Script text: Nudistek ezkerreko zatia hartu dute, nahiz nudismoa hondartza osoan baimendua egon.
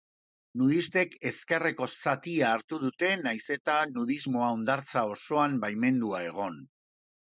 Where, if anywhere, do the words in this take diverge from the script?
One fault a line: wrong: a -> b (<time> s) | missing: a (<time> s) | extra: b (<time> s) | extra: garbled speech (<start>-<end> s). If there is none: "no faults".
extra: eta (3.6 s)